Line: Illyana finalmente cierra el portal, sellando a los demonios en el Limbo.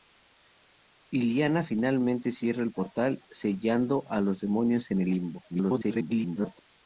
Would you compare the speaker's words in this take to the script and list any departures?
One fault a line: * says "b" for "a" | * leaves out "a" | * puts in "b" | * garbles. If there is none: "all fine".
* garbles